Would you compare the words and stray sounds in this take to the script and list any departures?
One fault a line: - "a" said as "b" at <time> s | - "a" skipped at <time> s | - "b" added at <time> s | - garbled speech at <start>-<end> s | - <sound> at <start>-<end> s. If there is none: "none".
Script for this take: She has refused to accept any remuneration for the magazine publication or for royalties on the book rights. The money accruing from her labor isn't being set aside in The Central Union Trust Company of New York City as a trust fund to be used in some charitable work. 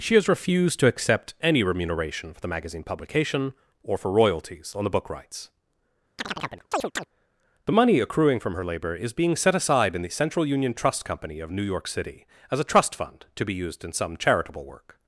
- chirp at 6.2-7.1 s
- "isn't" said as "is" at 9.0 s